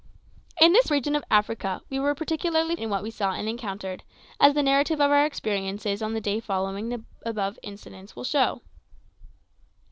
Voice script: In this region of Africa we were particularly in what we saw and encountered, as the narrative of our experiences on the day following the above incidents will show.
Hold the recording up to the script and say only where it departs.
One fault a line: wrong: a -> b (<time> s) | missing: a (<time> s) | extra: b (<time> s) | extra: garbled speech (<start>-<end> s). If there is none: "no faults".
no faults